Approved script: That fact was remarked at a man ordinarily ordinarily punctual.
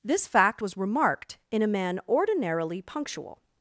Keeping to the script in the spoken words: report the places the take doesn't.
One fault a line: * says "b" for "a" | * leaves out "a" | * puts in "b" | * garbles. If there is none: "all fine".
* says "This" for "That"
* says "in" for "at"
* leaves out "ordinarily"